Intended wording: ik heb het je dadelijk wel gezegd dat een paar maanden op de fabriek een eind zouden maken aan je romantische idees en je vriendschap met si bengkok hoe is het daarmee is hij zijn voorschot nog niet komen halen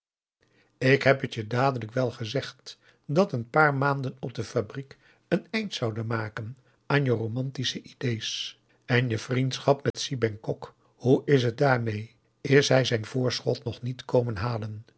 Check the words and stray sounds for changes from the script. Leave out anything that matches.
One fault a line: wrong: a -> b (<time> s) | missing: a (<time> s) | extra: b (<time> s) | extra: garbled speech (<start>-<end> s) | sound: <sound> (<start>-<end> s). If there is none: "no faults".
sound: dropout (9.9-9.9 s)